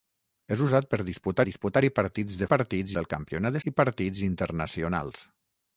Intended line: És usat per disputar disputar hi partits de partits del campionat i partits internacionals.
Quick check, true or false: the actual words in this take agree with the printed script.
true